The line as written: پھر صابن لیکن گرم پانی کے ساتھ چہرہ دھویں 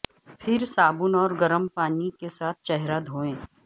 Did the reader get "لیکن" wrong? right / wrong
wrong